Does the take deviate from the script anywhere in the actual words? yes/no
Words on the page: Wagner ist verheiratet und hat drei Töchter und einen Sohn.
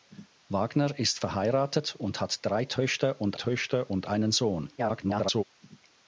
yes